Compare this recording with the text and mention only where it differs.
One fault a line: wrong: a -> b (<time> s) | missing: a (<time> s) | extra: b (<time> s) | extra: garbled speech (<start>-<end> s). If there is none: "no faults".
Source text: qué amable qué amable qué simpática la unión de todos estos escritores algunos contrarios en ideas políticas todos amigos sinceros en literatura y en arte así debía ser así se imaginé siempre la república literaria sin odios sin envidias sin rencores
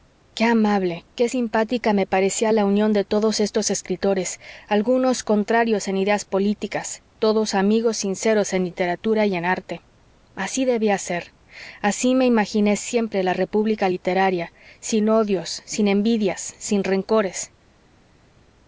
wrong: amable qué simpática -> simpática me parecía (1.3 s)
wrong: se -> me (12.1 s)